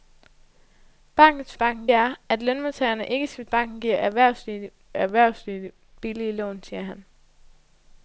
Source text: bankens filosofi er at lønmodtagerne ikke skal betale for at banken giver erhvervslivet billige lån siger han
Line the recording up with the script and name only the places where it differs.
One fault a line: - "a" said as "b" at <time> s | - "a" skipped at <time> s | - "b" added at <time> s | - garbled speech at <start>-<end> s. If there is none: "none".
- "filosofi" said as "banken" at 1.6 s
- "betale for at" skipped at 3.4 s
- "erhvervslivet" added at 4.9 s